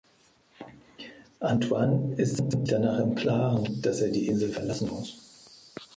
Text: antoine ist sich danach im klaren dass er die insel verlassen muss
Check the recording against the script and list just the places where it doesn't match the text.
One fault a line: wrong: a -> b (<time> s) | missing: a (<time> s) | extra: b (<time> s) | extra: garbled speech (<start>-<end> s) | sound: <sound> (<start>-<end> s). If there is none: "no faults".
extra: sich (2.5 s)